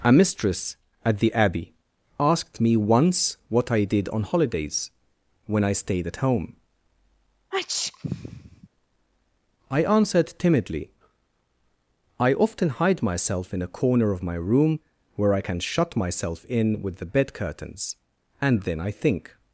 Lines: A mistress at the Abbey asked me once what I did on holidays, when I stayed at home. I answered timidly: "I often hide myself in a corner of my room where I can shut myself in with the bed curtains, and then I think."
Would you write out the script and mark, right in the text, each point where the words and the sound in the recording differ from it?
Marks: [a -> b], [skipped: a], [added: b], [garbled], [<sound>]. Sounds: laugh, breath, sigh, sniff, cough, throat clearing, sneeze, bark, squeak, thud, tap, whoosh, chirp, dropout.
A mistress at the Abbey asked me once what I did on holidays, when I stayed at home. [sneeze] I answered timidly: "I often hide myself in a corner of my room where I can shut myself in with the bed curtains, and then I think."